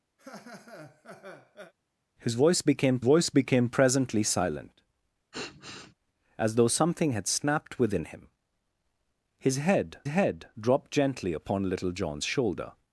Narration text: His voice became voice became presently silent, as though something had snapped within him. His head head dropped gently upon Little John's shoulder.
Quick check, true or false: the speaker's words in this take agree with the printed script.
true